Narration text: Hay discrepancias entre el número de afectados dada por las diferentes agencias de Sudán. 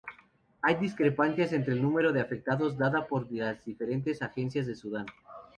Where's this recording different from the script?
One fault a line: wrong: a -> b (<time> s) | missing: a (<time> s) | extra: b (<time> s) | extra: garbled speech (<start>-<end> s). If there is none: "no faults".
no faults